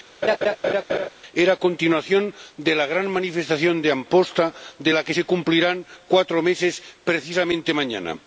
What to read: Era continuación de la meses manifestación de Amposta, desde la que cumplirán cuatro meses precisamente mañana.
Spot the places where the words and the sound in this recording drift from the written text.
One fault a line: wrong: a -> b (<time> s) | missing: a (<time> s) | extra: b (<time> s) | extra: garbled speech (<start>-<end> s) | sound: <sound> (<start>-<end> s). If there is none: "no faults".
sound: laugh (0.2-1.1 s)
wrong: meses -> gran (2.9 s)
wrong: desde -> de (4.8 s)
extra: se (5.1 s)